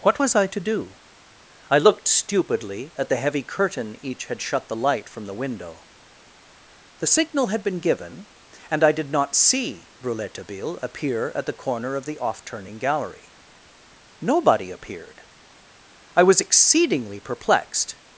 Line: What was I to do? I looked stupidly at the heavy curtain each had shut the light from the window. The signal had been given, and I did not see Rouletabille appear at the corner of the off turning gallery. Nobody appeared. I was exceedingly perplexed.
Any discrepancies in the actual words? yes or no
no